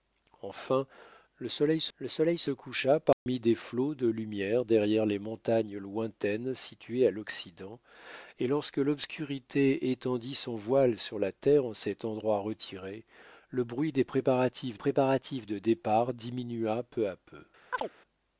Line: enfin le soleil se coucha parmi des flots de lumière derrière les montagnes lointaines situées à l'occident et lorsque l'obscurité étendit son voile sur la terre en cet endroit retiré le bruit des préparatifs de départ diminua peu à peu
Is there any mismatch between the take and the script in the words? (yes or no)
yes